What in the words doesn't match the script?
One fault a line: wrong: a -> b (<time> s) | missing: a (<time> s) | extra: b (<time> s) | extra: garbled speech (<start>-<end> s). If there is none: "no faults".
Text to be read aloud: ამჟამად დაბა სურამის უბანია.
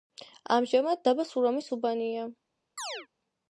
no faults